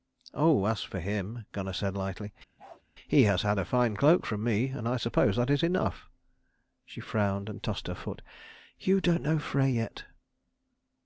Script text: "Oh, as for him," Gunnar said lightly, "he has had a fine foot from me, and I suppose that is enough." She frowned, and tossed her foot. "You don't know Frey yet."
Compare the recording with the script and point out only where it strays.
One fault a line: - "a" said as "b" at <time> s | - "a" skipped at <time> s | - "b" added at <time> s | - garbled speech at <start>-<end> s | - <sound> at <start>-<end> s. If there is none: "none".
- bark at 2.6-2.8 s
- "foot" said as "cloak" at 4.0 s